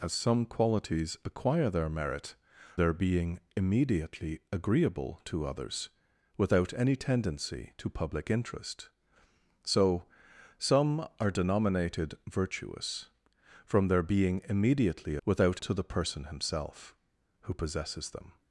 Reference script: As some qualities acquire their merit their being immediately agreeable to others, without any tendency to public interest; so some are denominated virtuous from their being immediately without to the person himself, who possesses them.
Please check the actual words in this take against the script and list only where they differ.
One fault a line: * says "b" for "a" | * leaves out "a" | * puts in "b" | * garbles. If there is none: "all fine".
all fine